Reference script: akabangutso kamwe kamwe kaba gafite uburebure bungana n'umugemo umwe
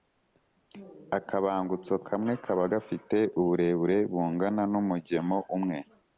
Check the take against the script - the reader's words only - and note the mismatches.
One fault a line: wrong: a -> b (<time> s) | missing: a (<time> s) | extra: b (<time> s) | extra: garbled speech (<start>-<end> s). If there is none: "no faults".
missing: kamwe (2.3 s)